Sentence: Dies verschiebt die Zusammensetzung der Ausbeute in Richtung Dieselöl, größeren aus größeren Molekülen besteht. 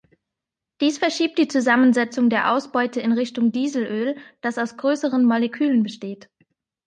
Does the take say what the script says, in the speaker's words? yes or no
no